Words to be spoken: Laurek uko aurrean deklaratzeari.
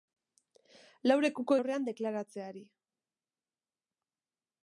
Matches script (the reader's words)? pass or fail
pass